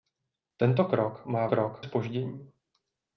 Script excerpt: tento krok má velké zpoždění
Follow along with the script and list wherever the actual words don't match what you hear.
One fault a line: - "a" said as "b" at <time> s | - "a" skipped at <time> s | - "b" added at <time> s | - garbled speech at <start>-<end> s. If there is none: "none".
- "velké" said as "krok" at 1.4 s